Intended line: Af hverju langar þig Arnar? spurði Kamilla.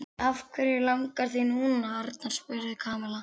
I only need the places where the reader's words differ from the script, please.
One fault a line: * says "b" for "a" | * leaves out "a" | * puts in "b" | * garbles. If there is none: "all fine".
* puts in "núna"